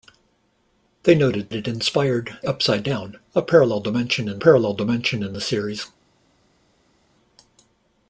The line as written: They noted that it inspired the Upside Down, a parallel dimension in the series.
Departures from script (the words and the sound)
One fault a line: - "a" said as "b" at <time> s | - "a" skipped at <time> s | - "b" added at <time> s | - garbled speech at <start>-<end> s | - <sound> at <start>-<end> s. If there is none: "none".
- "that" skipped at 1.5 s
- "the" skipped at 2.4 s
- "parallel dimension in" added at 4.4 s